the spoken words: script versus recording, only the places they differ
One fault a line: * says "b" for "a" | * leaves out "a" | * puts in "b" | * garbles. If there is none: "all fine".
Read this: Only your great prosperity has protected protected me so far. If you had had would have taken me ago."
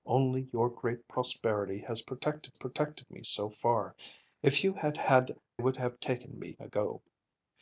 all fine